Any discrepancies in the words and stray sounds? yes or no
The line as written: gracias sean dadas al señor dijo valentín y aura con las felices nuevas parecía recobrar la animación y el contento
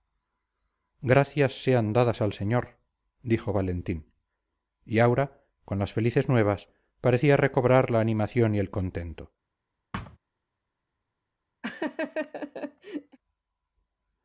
yes